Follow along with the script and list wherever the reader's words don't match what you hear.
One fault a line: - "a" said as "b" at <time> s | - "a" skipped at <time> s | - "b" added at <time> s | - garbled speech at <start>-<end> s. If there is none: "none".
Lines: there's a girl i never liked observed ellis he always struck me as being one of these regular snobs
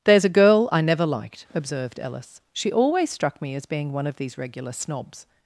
- "he" said as "she" at 2.5 s